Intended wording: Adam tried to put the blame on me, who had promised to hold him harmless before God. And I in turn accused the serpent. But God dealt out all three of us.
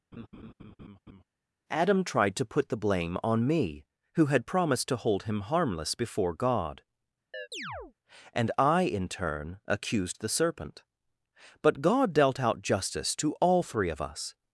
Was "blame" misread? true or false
false